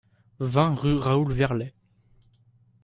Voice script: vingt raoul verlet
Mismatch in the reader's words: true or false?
true